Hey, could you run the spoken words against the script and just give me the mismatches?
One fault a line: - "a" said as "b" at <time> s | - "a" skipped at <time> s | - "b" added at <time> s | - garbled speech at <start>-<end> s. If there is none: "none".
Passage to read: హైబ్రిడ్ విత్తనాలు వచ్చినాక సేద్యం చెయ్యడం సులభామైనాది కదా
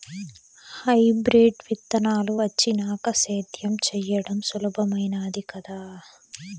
none